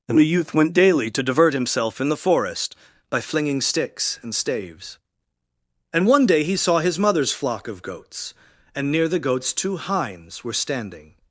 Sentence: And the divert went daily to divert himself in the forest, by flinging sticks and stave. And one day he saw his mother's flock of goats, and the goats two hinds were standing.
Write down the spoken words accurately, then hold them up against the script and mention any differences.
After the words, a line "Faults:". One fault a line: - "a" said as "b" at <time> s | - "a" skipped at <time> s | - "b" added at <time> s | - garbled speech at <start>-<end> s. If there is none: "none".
And the youth went daily to divert himself in the forest, by flinging sticks and staves. And one day he saw his mother's flock of goats, and near the goats two hinds were standing.
Faults:
- "divert" said as "youth" at 0.2 s
- "stave" said as "staves" at 4.3 s
- "near" added at 8.9 s